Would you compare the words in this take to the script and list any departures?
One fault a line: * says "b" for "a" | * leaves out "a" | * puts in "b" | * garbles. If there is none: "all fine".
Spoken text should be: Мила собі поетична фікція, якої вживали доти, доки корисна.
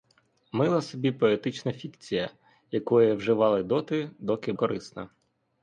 all fine